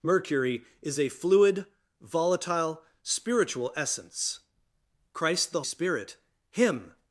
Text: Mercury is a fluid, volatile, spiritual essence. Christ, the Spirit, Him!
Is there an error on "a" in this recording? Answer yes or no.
no